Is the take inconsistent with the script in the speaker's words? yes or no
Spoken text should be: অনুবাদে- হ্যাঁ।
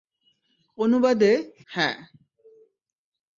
no